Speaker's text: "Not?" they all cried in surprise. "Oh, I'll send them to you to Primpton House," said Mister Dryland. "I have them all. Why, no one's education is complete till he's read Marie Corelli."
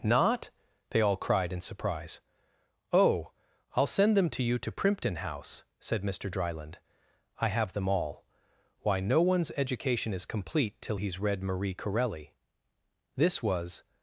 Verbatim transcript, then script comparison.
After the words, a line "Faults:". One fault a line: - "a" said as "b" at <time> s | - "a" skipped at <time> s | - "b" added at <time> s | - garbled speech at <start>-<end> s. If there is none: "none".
"Not?" they all cried in surprise. "Oh, I'll send them to you to Primpton House," said Mister Dryland. "I have them all. Why, no one's education is complete till he's read Marie Corelli." This was
Faults:
- "This was" added at 13.2 s